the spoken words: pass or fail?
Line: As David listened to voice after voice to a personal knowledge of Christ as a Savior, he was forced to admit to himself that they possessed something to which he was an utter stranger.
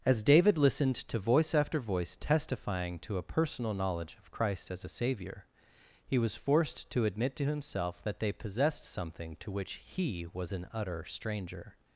fail